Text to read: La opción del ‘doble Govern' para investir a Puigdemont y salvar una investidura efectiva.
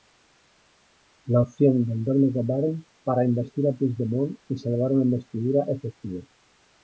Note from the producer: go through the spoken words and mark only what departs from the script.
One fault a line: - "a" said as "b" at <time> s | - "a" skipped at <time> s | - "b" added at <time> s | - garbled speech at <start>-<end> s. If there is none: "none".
none